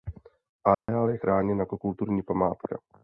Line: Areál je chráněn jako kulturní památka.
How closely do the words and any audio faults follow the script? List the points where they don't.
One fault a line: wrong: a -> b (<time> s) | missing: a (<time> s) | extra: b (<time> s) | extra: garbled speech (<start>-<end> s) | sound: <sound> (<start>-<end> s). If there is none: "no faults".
sound: dropout (0.7-0.9 s)